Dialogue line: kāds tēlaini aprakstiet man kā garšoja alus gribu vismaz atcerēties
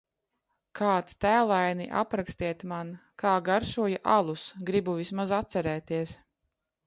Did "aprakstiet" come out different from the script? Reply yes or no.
no